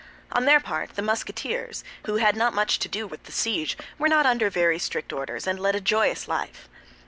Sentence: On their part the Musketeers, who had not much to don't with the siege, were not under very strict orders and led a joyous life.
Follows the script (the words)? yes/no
no